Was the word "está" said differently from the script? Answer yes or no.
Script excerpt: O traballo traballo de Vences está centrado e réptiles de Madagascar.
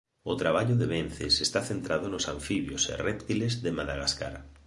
no